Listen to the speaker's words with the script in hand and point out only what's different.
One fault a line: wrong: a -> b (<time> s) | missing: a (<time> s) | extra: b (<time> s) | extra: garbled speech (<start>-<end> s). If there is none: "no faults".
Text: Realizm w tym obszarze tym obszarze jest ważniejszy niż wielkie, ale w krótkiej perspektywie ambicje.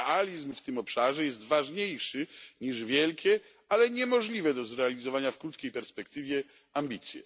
missing: tym obszarze (1.2 s)
extra: niemożliwe do zrealizowania (3.9 s)